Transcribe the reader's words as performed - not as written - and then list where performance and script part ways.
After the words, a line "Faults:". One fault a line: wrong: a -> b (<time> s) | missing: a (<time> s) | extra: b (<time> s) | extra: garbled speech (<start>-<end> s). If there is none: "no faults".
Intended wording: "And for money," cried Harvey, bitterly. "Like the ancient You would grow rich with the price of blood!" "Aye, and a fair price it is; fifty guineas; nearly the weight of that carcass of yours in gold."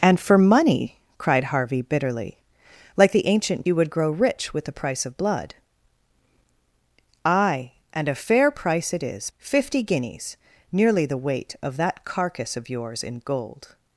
"And for money," cried Harvey, bitterly. "Like the ancient You would grow rich with the price of blood!" "Aye, and a fair price it is; fifty guineas; nearly the weight of that carcass of yours in gold."
Faults:
no faults